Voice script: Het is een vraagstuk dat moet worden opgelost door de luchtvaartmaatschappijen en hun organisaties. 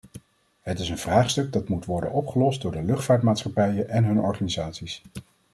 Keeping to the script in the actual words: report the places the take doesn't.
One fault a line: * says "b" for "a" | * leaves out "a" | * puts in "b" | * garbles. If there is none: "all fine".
all fine